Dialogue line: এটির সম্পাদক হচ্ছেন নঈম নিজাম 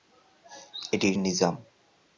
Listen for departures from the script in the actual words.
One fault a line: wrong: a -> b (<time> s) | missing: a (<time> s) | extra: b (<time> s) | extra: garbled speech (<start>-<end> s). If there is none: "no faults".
missing: সম্পাদক হচ্ছেন নঈম (1.2 s)